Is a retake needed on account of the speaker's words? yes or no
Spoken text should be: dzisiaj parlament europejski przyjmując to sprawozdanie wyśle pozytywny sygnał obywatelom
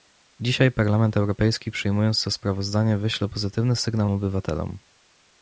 no